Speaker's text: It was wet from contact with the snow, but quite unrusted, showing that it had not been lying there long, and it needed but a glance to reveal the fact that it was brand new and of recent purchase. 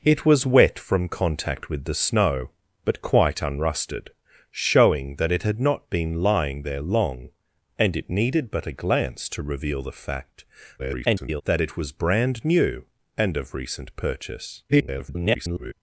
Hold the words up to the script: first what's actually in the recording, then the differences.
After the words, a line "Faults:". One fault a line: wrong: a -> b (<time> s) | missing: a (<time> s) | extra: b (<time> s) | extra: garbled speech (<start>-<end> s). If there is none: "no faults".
It was wet from contact with the snow, but quite unrusted, showing that it had not been lying there long, and it needed but a glance to reveal the fact [garbled] that it was brand new and of recent purchase. [garbled]
Faults:
extra: garbled speech (10.8-11.4 s)
extra: garbled speech (14.7-15.7 s)